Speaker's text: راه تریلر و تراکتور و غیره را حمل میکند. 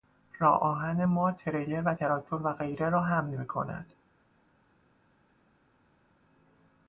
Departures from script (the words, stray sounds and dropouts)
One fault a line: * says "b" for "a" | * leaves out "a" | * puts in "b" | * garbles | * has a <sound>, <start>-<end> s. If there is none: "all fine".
* puts in "آهن ما"